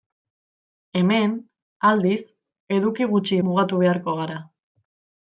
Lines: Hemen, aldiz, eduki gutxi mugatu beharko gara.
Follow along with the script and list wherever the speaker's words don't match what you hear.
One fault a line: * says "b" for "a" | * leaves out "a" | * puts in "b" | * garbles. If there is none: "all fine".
all fine